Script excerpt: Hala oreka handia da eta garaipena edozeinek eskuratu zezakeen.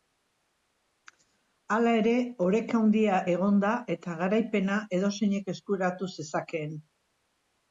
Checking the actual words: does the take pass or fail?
fail